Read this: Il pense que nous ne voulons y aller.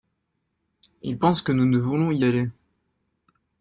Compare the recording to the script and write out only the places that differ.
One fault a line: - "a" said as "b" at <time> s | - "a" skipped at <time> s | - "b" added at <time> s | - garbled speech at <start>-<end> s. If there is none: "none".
none